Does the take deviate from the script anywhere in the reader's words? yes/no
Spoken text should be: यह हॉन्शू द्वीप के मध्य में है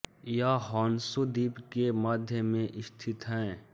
yes